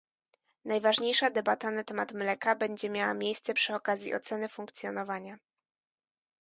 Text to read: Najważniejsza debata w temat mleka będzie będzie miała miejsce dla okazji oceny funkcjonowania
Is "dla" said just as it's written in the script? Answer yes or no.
no